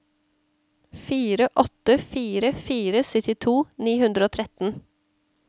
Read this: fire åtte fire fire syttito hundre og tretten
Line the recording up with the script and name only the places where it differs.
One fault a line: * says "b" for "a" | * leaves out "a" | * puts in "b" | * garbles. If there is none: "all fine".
* puts in "ni"